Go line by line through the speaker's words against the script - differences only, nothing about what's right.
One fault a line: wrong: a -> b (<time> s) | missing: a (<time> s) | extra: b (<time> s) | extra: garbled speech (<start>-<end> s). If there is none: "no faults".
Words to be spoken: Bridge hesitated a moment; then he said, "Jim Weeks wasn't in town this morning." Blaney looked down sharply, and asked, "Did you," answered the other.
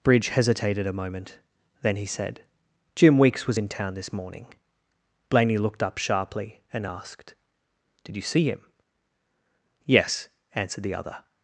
wrong: wasn't -> was (3.5 s)
wrong: down -> up (5.8 s)
extra: see him Yes (8.2 s)